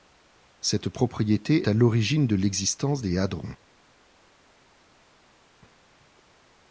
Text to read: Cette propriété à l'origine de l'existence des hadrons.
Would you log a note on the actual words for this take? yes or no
no